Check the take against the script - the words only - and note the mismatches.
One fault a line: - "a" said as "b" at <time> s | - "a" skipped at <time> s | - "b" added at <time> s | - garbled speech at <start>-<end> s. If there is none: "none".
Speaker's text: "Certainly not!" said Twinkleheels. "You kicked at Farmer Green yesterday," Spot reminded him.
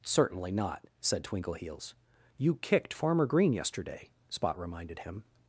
- "at" skipped at 2.9 s